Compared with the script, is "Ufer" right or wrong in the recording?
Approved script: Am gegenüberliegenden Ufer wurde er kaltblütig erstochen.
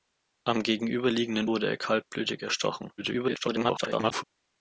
wrong